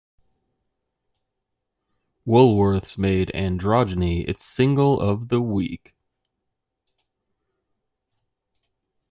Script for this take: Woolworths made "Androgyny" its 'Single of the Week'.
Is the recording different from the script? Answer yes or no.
no